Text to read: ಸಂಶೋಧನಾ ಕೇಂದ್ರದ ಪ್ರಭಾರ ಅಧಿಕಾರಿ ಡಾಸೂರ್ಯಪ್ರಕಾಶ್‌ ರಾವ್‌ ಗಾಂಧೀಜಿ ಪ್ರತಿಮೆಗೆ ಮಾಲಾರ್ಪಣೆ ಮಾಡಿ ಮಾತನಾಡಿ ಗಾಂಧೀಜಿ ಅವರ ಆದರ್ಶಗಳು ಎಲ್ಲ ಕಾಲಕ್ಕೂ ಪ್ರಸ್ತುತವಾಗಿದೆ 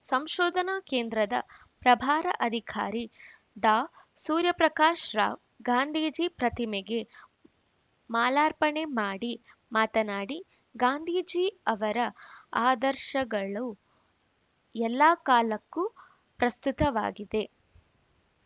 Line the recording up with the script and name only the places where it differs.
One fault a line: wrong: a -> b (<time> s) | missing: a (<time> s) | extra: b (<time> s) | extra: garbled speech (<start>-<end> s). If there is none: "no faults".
no faults